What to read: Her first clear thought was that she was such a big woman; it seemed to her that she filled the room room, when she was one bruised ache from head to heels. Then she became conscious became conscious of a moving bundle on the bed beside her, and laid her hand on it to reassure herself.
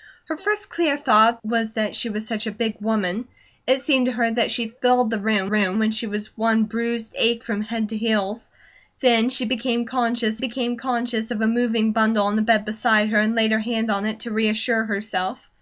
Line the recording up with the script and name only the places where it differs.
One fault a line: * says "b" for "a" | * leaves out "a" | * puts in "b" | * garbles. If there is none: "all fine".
all fine